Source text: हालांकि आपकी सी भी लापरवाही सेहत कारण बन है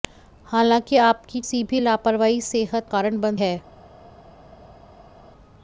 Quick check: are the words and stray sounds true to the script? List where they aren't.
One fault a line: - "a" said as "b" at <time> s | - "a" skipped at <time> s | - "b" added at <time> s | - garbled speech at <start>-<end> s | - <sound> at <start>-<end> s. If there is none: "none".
none